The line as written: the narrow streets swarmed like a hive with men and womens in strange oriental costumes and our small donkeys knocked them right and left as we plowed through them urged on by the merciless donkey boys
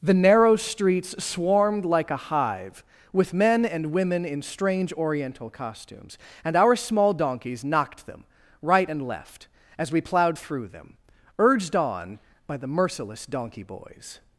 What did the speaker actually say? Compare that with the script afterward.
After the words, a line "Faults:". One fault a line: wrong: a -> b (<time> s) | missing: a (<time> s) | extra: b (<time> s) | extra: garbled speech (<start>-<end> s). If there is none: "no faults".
the narrow streets swarmed like a hive with men and women in strange oriental costumes and our small donkeys knocked them right and left as we plowed through them urged on by the merciless donkey boys
Faults:
wrong: womens -> women (3.9 s)